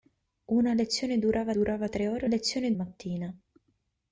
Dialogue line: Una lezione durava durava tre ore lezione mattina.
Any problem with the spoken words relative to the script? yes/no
no